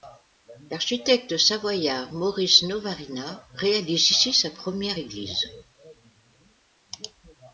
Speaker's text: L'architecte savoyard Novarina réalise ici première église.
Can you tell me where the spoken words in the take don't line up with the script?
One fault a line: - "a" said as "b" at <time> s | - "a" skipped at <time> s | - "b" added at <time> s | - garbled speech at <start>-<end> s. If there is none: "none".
- "Maurice" added at 2.1 s
- "sa" added at 4.3 s